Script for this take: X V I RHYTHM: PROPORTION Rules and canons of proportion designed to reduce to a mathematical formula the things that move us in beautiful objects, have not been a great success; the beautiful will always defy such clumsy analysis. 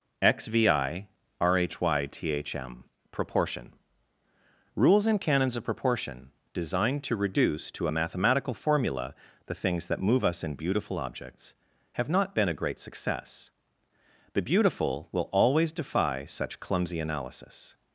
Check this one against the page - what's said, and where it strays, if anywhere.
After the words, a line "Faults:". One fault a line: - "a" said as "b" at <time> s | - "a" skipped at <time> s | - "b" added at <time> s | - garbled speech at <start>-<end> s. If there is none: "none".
X V I RHYTHM: PROPORTION Rules and canons of proportion designed to reduce to a mathematical formula the things that move us in beautiful objects, have not been a great success; the beautiful will always defy such clumsy analysis.
Faults:
none